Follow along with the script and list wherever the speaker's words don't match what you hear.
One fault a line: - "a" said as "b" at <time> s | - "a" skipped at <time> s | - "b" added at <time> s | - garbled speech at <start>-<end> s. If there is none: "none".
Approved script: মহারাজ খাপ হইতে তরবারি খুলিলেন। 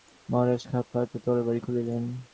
none